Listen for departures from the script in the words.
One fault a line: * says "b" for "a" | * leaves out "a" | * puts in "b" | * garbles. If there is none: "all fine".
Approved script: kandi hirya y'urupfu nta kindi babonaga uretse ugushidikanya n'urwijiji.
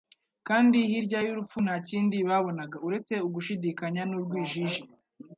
all fine